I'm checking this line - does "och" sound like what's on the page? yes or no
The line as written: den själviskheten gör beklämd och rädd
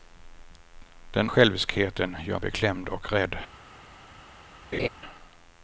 yes